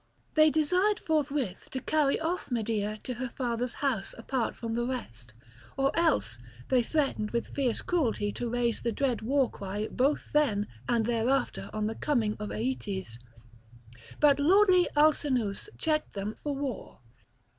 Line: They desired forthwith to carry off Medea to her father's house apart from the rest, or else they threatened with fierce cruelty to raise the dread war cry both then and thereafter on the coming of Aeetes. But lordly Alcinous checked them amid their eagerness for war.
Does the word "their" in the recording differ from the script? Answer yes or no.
yes